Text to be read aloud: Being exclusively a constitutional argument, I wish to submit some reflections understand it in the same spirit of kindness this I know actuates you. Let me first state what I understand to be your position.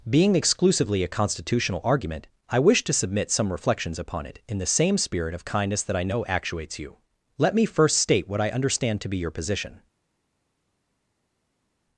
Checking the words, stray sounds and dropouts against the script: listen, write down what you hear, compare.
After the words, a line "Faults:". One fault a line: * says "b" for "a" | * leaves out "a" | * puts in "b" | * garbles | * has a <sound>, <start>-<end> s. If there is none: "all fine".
Being exclusively a constitutional argument, I wish to submit some reflections upon it in the same spirit of kindness that I know actuates you. Let me first state what I understand to be your position.
Faults:
* says "upon" for "understand"
* says "that" for "this"